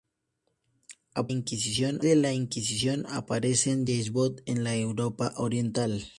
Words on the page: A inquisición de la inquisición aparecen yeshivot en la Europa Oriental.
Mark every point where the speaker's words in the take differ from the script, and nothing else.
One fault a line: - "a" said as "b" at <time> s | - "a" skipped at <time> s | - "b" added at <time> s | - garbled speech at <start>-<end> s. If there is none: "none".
none